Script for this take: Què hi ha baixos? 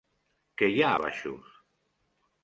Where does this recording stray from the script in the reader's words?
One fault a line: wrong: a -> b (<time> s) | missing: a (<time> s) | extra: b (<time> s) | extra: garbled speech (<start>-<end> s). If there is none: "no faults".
no faults